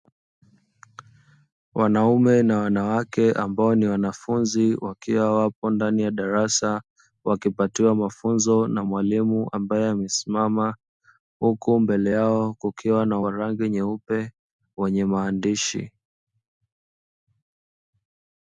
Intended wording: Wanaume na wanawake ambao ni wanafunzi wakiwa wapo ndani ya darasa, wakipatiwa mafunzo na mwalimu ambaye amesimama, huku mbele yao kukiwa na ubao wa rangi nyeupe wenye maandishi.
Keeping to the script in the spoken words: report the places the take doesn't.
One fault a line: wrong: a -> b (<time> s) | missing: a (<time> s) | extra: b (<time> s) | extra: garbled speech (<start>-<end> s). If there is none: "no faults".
missing: ubao (13.2 s)